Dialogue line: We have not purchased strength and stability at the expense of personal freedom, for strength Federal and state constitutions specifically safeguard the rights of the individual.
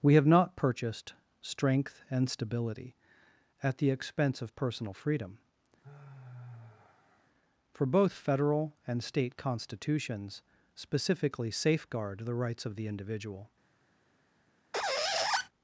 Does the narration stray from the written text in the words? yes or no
yes